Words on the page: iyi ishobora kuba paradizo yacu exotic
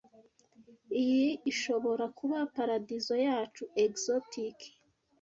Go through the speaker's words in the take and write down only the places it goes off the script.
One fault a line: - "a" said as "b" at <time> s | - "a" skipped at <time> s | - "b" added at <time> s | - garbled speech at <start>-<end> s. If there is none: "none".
none